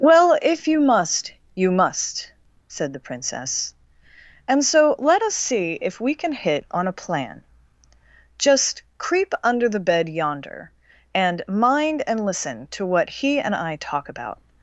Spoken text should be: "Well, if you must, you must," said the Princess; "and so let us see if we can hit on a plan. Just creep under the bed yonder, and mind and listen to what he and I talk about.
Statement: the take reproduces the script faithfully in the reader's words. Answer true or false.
true